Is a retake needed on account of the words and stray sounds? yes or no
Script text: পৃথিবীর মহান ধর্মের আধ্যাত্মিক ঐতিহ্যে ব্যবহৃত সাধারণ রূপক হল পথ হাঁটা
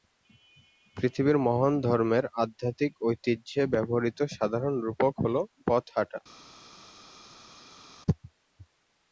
no